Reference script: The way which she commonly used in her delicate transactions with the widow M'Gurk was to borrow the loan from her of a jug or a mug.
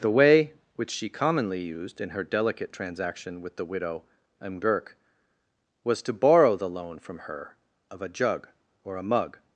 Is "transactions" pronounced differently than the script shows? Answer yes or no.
yes